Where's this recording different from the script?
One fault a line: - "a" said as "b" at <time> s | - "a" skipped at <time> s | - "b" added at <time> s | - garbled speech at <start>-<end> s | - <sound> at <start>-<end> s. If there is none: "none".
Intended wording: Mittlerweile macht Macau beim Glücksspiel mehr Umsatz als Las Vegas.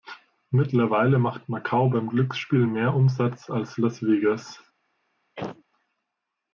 - sneeze at 5.4-5.6 s